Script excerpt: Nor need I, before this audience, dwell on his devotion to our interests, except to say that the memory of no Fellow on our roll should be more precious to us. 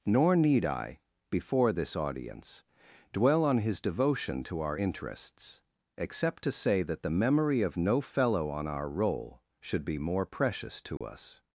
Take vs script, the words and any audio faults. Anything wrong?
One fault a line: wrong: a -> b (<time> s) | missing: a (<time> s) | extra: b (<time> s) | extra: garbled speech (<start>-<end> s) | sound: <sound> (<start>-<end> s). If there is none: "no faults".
sound: dropout (11.0-11.0 s)